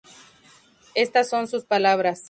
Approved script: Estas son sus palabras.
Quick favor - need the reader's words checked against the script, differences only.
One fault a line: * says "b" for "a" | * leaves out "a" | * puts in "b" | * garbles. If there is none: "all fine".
all fine